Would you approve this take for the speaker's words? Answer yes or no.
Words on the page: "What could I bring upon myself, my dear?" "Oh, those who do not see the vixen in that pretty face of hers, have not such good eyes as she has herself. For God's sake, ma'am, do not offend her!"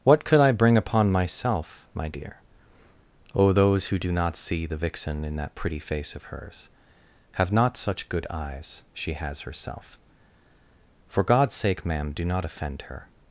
no